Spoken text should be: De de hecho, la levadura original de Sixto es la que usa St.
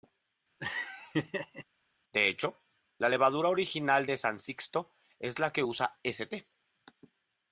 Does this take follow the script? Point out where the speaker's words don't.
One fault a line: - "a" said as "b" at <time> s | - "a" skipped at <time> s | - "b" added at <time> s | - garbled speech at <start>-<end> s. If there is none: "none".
- "de" skipped at 2.3 s
- "San" added at 4.2 s